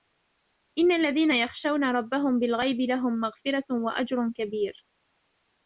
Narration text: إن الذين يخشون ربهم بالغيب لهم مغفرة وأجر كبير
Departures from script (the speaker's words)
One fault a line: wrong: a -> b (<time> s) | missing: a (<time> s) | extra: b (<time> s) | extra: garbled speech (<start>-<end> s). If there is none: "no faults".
no faults